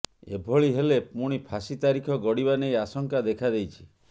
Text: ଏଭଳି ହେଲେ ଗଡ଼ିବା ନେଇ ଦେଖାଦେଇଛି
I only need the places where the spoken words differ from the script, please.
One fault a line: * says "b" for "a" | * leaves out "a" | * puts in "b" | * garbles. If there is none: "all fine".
* puts in "ପୁଣି ଫାଶୀ ତାରିଖ"
* puts in "ଆଶଙ୍କା"